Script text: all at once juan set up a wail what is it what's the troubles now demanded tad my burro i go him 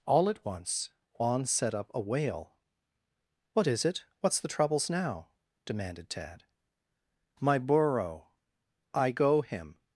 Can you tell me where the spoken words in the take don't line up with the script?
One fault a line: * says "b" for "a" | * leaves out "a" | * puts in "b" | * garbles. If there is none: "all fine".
all fine